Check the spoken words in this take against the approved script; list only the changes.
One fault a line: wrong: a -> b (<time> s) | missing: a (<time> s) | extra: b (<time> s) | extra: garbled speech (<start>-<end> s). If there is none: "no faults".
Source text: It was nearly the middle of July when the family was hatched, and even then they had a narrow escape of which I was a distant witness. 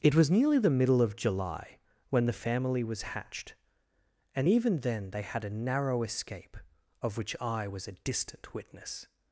no faults